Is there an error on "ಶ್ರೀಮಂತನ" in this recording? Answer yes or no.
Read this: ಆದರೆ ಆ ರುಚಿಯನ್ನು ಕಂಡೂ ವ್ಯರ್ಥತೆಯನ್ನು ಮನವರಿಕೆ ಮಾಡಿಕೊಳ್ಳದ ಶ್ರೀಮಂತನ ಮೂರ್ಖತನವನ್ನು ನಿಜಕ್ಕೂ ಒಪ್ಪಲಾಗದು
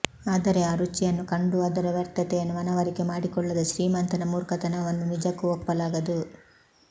no